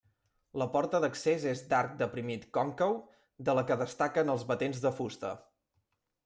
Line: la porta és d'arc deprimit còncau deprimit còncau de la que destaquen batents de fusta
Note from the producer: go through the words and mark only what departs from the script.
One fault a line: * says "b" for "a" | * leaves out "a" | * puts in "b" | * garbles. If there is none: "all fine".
* puts in "d'accés"
* leaves out "deprimit còncau"
* puts in "els"